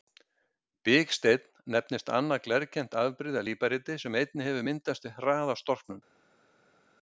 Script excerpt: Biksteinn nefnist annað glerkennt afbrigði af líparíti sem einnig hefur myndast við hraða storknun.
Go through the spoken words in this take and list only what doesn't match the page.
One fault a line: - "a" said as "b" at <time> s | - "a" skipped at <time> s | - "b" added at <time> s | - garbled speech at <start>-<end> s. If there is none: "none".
none